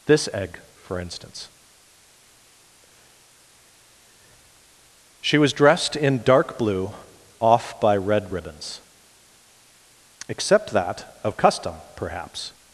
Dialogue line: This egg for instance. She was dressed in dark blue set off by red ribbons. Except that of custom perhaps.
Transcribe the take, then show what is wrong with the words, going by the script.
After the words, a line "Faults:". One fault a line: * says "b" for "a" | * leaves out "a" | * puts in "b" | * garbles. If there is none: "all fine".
This egg for instance. She was dressed in dark blue off by red ribbons. Except that of custom perhaps.
Faults:
* leaves out "set"